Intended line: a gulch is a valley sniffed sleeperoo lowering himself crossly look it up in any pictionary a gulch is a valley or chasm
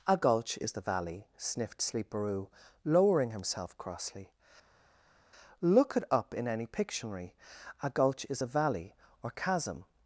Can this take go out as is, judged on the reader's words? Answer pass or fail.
fail